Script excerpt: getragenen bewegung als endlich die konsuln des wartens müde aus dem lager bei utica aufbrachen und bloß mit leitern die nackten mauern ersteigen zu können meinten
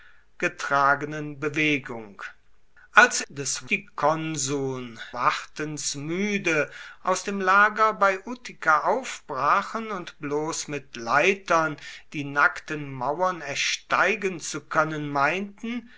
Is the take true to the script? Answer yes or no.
no